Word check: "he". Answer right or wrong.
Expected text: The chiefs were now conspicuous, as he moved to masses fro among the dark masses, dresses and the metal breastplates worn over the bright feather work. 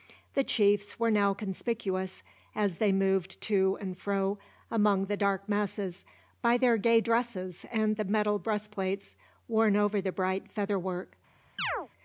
wrong